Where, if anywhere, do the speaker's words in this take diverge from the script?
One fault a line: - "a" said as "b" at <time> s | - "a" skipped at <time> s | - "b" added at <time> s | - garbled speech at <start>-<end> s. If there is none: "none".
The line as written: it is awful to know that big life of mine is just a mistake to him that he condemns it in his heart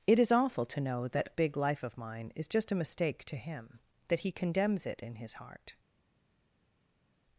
none